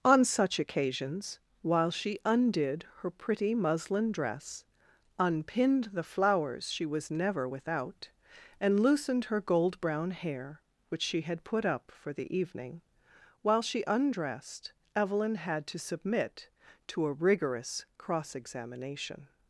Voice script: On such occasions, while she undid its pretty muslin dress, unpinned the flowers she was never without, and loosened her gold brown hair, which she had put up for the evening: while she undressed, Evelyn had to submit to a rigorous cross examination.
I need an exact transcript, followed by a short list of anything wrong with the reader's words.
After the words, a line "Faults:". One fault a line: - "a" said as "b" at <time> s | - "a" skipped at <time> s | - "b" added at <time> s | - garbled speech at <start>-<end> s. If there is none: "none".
On such occasions, while she undid her pretty muslin dress, unpinned the flowers she was never without, and loosened her gold brown hair, which she had put up for the evening: while she undressed, Evelyn had to submit to a rigorous cross examination.
Faults:
- "its" said as "her" at 3.0 s